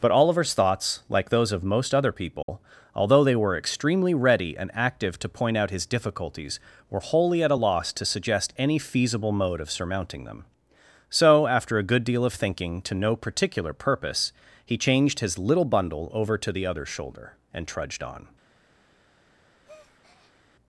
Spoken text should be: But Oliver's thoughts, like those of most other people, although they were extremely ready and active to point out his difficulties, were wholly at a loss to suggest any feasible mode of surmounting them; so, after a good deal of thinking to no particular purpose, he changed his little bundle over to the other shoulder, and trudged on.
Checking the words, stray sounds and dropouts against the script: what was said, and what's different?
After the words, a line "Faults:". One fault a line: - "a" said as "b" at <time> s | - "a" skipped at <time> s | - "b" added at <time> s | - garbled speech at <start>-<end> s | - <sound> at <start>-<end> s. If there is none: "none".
But Oliver's thoughts, like those of most other people, although they were extremely ready and active to point out his difficulties, were wholly at a loss to suggest any feasible mode of surmounting them; so, after a good deal of thinking to no particular purpose, he changed his little bundle over to the other shoulder, and trudged on.
Faults:
- dropout at 2.4-2.5 s
- breath at 19.6-20.4 s